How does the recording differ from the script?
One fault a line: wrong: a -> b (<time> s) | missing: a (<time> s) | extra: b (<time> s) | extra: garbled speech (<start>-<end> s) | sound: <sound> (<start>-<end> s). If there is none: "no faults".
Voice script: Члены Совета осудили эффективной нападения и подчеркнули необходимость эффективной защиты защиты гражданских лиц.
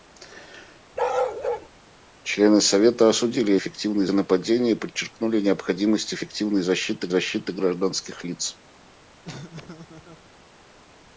sound: bark (1.0-1.7 s)
sound: laugh (9.2-10.3 s)